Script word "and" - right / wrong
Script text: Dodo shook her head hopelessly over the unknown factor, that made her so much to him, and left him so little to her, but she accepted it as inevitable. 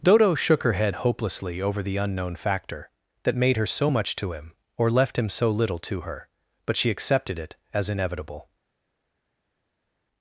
wrong